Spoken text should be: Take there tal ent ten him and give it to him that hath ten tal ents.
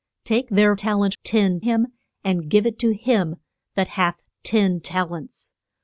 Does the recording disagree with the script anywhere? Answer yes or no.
no